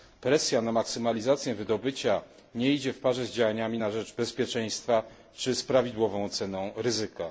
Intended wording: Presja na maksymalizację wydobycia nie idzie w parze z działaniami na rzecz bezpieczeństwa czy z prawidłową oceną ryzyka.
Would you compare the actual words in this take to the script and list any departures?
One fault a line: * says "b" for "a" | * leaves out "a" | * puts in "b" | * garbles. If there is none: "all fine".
all fine